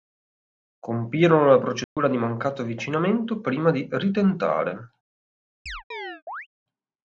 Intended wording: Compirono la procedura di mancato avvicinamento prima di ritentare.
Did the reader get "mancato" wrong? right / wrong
right